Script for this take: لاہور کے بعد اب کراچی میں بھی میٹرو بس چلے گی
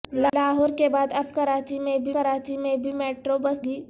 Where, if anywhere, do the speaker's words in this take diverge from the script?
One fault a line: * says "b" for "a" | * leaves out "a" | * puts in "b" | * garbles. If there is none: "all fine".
* puts in "کراچی میں بھی"
* leaves out "چلے"